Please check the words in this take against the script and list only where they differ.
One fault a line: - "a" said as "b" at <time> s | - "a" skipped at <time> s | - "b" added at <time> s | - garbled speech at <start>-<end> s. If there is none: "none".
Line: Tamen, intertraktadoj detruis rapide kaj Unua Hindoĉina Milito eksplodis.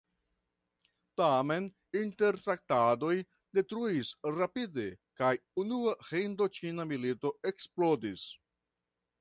none